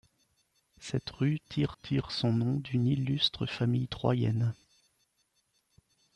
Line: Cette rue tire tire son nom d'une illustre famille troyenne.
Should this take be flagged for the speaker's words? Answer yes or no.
no